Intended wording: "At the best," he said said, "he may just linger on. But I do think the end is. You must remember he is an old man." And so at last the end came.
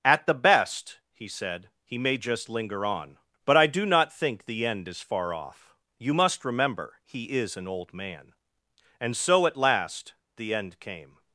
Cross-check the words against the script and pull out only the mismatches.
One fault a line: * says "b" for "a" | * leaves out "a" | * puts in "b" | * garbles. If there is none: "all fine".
* leaves out "said"
* puts in "not"
* puts in "far off"